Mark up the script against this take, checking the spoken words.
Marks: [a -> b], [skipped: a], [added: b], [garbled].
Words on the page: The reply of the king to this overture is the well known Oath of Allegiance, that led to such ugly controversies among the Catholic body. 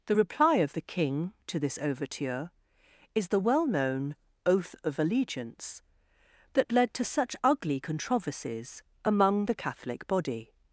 The reply of the king to this overture is the well known Oath of Allegiance, that led to such ugly controversies among the Catholic body.